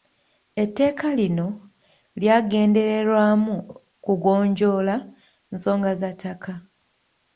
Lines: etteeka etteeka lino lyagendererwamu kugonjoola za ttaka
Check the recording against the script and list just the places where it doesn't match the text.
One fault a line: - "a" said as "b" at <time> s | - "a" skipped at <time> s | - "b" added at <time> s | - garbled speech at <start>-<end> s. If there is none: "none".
- "etteeka" skipped at 1.1 s
- "nsonga" added at 5.5 s